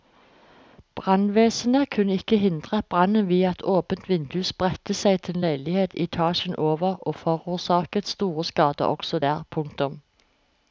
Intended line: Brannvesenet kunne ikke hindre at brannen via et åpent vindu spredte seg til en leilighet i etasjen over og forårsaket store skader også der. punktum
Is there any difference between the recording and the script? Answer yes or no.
no